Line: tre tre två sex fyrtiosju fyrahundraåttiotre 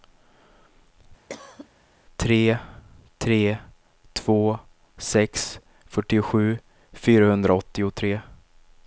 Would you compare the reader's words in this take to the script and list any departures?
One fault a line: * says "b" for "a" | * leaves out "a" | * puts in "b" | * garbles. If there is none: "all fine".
all fine